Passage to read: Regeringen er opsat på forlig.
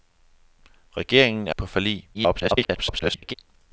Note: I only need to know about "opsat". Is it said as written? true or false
false